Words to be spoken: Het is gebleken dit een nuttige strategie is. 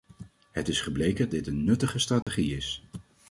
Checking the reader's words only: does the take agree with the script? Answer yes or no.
yes